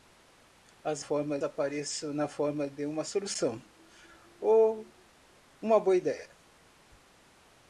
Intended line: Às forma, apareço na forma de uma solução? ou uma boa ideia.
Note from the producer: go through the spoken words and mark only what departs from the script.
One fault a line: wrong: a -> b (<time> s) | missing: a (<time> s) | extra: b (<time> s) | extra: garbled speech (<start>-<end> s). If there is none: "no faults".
no faults